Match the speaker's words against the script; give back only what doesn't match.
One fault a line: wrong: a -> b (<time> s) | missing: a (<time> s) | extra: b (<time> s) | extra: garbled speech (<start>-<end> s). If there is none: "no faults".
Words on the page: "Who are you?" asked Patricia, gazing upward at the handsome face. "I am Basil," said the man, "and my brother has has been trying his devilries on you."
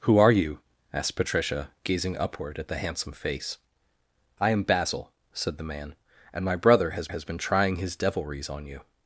no faults